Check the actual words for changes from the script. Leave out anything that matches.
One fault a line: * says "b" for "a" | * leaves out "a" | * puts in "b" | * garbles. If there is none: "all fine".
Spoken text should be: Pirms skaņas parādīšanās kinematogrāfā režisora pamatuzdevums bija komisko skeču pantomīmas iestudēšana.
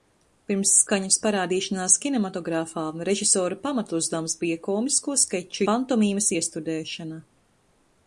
all fine